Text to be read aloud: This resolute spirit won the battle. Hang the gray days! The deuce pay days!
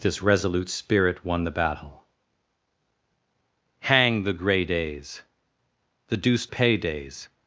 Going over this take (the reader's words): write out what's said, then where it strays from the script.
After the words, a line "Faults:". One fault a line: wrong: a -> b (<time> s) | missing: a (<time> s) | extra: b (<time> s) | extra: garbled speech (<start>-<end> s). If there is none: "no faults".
This resolute spirit won the battle. Hang the gray days! The deuce pay days!
Faults:
no faults